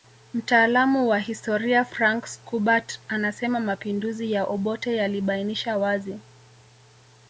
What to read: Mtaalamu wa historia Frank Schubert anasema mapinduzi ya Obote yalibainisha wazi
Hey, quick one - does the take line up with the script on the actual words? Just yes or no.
yes